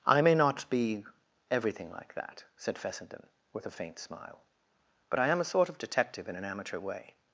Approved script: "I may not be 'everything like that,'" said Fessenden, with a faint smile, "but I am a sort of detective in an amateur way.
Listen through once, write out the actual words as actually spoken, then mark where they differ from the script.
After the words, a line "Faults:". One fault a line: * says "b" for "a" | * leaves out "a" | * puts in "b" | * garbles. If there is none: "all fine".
"I may not be 'everything like that,'" said Fessenden, with a faint smile, "but I am a sort of detective in an amateur way.
Faults:
all fine